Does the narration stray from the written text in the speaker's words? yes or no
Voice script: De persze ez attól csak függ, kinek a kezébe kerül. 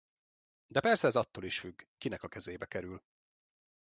yes